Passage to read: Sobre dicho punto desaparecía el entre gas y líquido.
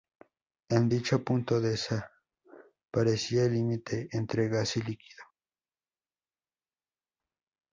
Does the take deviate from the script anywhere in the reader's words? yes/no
yes